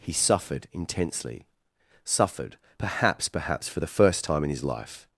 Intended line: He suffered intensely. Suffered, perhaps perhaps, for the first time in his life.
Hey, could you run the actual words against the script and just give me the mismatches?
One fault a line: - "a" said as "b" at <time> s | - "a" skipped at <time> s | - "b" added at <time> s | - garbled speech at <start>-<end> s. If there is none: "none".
none